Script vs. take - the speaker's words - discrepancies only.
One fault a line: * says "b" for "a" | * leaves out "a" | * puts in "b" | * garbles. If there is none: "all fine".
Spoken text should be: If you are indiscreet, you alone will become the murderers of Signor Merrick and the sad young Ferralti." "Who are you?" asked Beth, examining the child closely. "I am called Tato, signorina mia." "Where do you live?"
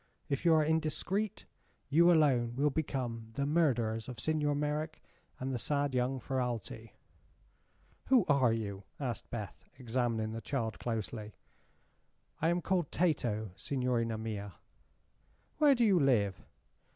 all fine